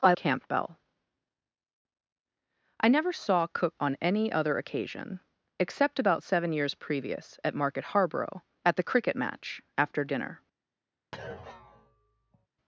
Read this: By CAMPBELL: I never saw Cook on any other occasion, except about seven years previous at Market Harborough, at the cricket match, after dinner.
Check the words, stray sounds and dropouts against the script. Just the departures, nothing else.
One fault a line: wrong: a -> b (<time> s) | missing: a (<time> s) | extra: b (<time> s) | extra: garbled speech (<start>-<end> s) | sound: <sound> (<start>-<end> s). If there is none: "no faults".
sound: thud (11.1-12.5 s)